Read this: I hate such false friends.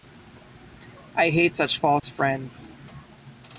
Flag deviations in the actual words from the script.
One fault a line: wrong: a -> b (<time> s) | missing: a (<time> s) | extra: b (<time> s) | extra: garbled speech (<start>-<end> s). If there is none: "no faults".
no faults